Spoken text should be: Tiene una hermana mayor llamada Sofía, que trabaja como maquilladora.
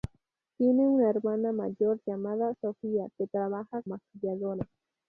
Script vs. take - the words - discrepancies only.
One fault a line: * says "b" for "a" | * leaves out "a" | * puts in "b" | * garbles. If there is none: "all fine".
* leaves out "como"